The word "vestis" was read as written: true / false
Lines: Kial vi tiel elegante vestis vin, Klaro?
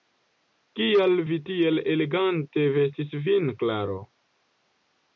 true